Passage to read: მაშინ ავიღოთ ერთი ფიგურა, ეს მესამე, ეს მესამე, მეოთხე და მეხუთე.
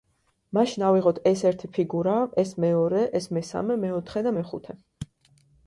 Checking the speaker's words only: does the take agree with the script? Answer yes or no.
no